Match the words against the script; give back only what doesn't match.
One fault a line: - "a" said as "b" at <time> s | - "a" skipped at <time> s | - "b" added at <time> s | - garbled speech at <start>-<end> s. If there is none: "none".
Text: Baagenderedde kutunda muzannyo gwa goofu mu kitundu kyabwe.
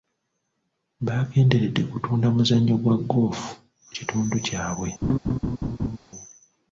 none